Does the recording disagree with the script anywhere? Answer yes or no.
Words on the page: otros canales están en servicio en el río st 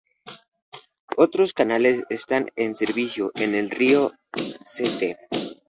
no